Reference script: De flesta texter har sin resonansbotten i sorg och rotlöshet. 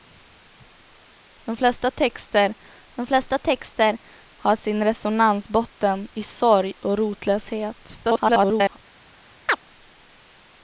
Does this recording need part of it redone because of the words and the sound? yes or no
yes